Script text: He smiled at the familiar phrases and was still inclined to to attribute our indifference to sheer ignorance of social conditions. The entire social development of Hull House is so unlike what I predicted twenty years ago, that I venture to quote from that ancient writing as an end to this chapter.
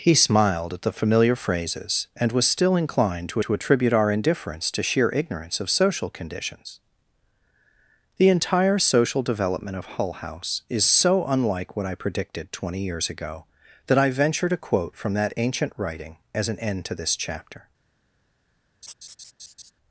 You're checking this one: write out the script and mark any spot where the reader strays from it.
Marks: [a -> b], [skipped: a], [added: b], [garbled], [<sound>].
He smiled at the familiar phrases and was still inclined to to attribute our indifference to sheer ignorance of social conditions. The entire social development of Hull House is so unlike what I predicted twenty years ago, that I venture to quote from that ancient writing as an end to this chapter. [laugh]